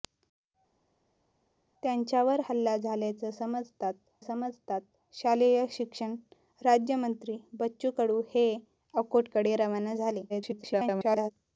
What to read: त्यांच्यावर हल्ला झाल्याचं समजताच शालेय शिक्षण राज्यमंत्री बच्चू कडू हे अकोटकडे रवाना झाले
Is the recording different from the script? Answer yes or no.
yes